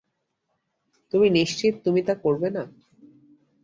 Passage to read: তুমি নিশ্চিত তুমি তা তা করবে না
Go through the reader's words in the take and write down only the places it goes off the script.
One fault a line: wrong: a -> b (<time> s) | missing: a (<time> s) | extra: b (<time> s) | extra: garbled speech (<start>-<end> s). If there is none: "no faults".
missing: তা (2.1 s)